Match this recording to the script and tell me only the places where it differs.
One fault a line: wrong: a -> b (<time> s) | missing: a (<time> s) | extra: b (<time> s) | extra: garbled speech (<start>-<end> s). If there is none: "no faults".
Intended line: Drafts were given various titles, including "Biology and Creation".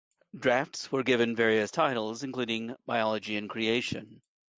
no faults